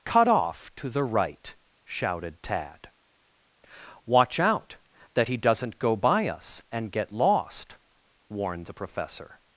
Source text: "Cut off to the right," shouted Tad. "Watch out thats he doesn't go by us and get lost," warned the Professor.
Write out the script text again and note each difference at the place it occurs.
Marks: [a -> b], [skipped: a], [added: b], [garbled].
"Cut off to the right," shouted Tad. "Watch out [thats -> that] he doesn't go by us and get lost," warned the Professor.